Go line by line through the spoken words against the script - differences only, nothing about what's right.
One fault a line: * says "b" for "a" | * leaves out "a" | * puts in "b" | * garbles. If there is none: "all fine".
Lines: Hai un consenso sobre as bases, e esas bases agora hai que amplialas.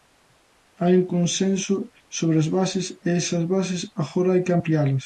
all fine